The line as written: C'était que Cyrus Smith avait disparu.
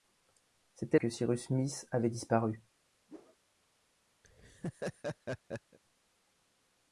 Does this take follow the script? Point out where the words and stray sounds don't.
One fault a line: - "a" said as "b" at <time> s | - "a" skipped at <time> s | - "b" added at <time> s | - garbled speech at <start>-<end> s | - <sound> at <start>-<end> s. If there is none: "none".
- whoosh at 3.1-3.4 s
- laugh at 4.2-5.8 s